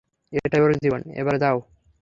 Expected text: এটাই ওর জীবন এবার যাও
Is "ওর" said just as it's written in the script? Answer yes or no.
yes